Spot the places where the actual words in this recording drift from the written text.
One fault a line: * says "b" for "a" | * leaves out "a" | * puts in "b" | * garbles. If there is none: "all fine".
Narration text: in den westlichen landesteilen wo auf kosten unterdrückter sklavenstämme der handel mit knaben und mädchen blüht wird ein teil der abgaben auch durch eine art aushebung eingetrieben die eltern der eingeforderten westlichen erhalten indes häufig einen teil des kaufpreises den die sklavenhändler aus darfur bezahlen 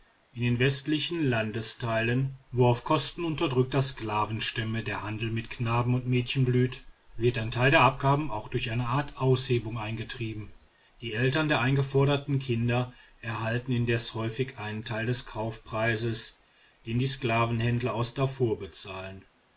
* says "kinder" for "westlichen"